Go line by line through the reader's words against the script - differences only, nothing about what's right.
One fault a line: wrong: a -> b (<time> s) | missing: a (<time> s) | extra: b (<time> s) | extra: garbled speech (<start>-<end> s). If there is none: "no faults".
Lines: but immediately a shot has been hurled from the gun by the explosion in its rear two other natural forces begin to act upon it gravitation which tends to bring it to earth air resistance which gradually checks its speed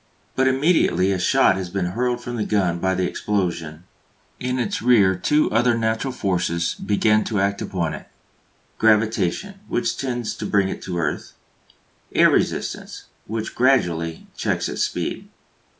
no faults